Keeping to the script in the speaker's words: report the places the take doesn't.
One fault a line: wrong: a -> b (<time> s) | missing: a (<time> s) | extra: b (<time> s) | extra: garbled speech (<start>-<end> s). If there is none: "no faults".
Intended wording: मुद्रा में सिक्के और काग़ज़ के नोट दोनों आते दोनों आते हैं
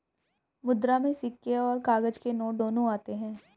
missing: दोनों आते (3.1 s)